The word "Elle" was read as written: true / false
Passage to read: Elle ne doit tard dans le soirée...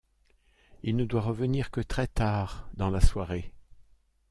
false